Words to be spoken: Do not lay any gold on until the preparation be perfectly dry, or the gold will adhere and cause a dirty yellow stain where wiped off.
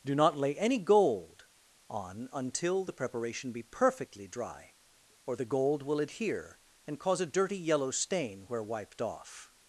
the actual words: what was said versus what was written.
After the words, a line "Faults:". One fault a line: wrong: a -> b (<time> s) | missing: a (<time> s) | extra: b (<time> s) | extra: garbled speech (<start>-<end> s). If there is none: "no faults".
Do not lay any gold on until the preparation be perfectly dry, or the gold will adhere and cause a dirty yellow stain where wiped off.
Faults:
no faults